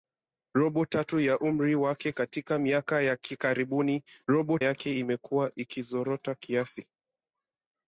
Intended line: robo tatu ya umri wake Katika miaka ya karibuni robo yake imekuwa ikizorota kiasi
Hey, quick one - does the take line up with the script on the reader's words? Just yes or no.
yes